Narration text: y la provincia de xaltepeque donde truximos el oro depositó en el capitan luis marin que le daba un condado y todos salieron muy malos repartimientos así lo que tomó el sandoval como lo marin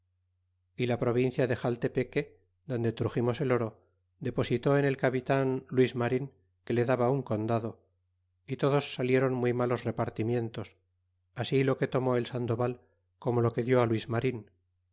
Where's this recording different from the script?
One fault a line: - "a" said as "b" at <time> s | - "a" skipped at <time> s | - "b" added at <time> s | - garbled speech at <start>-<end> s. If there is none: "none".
- "que dió luis" added at 13.5 s